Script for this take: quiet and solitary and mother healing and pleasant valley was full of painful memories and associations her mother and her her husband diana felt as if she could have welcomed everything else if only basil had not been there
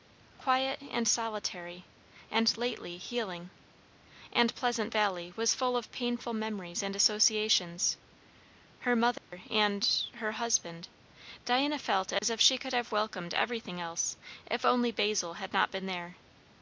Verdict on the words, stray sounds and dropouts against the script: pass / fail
fail